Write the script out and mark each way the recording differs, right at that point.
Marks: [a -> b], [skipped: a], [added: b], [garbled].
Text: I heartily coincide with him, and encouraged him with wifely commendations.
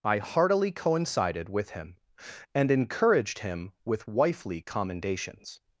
I heartily [coincide -> coincided] with him, and encouraged him with wifely commendations.